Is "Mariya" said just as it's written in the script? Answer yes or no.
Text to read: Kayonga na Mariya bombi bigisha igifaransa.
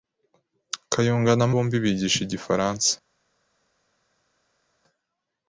no